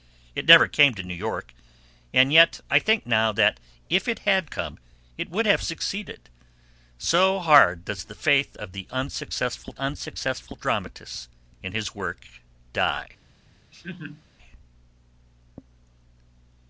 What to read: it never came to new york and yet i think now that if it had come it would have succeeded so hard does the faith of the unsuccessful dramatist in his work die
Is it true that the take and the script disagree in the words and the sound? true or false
true